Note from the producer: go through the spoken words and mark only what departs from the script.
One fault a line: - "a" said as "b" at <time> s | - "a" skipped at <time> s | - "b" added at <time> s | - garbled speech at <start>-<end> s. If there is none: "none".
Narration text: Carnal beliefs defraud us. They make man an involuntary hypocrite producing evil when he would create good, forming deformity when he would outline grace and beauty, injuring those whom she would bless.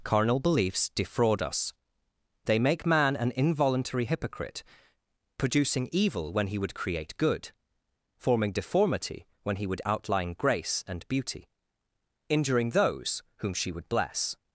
none